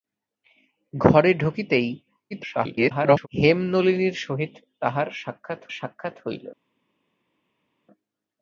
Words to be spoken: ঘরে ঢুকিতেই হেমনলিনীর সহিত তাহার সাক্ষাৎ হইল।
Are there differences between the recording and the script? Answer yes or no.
yes